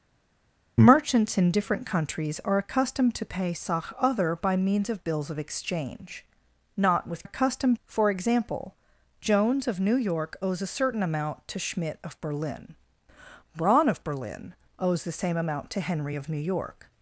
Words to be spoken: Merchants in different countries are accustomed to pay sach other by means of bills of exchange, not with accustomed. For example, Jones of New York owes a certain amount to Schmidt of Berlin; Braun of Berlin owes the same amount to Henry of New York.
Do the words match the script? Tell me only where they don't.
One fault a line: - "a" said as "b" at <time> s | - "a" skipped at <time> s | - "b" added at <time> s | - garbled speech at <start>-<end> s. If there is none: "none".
none